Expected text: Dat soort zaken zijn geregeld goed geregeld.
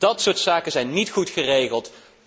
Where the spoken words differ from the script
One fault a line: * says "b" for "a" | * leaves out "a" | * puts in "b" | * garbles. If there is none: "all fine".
* says "niet" for "geregeld"